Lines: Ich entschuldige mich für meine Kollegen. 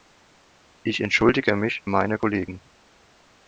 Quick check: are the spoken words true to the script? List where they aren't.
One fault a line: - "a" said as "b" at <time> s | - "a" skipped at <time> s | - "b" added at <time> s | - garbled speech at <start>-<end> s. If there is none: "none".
- "für" skipped at 1.8 s